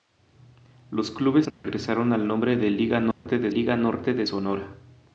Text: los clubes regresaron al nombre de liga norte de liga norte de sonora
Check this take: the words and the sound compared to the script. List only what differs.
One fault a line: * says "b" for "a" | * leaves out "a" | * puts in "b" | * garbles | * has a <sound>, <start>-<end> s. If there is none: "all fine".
* has a dropout, 1.5-1.6 s
* has a dropout, 3.1-3.3 s